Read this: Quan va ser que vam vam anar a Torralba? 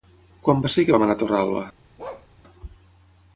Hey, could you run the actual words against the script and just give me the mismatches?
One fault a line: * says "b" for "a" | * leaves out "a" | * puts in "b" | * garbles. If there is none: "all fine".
* leaves out "vam"